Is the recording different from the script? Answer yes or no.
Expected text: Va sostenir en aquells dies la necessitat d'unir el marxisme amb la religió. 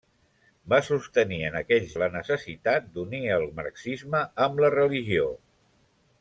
yes